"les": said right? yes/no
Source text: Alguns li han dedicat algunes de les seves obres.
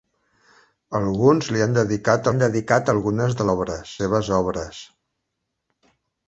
no